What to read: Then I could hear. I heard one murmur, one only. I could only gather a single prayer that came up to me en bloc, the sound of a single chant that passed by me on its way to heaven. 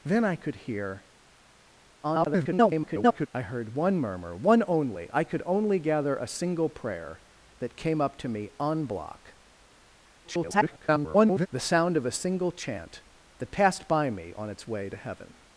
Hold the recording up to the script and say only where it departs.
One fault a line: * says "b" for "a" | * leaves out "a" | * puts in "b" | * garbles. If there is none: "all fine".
* garbles
* garbles